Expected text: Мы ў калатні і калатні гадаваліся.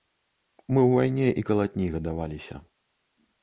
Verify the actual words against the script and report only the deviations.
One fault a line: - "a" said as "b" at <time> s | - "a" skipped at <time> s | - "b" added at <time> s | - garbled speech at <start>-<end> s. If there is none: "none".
- "калатні" said as "вайне" at 0.9 s